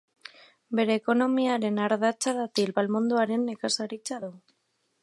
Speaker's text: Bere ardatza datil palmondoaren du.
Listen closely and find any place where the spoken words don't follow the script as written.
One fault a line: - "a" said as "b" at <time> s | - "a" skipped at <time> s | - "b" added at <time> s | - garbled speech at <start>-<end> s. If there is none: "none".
- "ekonomiaren" added at 1.0 s
- "nekazaritza" added at 3.5 s